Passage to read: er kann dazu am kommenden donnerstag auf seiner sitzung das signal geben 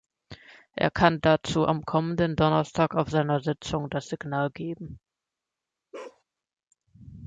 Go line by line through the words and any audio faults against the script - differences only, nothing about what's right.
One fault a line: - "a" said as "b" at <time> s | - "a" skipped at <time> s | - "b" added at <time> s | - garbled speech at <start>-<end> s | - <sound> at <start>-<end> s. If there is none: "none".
- bark at 5.9-6.2 s